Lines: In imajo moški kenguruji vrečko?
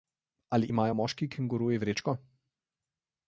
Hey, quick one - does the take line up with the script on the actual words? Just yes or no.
no